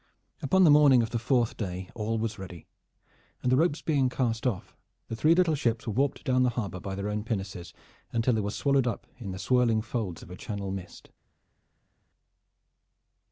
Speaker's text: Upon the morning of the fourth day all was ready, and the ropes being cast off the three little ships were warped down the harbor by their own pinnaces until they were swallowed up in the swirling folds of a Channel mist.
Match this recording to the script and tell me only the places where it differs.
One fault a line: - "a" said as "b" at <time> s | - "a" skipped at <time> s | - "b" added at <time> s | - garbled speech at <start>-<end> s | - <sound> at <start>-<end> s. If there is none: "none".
none